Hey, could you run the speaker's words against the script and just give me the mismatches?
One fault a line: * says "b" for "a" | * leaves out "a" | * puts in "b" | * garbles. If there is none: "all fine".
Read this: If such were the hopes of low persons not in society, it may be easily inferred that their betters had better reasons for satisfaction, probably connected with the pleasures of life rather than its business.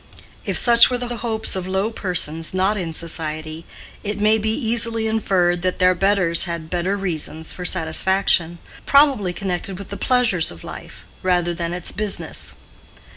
* puts in "the"